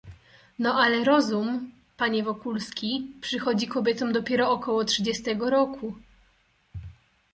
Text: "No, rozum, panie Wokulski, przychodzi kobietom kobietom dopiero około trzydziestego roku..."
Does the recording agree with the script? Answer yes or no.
no